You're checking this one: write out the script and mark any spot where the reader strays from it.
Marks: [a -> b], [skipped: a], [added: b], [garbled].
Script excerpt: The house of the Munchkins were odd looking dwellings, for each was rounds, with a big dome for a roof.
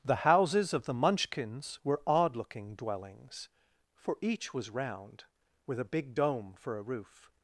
The [house -> houses] of the Munchkins were odd looking dwellings, for each was [rounds, -> round] with a big dome for a roof.